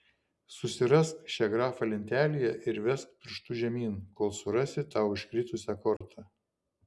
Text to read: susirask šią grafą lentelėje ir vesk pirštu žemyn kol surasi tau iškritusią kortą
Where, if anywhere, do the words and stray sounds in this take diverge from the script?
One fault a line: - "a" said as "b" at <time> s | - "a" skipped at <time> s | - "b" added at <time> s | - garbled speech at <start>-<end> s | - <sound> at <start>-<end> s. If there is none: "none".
- dropout at 6.0-6.0 s